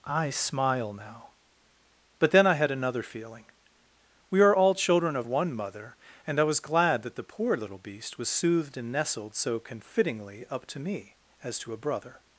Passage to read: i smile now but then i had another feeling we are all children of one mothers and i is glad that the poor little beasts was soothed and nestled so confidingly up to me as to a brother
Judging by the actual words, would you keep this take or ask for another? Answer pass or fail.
fail